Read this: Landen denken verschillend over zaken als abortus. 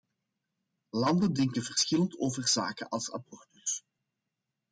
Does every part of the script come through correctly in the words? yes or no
yes